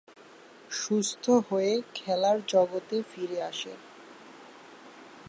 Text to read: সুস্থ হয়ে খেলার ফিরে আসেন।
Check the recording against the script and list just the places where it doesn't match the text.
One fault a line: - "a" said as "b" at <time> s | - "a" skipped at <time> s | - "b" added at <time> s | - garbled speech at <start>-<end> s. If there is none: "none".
- "জগতে" added at 2.5 s